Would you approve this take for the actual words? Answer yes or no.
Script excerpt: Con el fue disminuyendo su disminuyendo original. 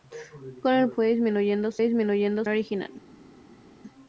yes